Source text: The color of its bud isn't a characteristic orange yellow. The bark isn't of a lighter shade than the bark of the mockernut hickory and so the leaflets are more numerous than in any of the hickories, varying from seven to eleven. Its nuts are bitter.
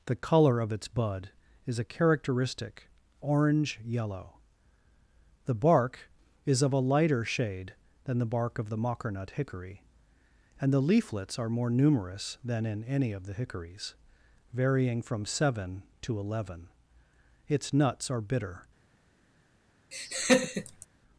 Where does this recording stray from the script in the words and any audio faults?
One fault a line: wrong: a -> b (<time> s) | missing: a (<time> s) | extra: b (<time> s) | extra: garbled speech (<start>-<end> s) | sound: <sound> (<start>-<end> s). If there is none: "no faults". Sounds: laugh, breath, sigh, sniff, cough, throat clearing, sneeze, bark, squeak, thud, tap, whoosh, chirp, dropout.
wrong: isn't -> is (1.7 s)
wrong: isn't -> is (6.5 s)
missing: so (10.7 s)
sound: laugh (19.9-20.9 s)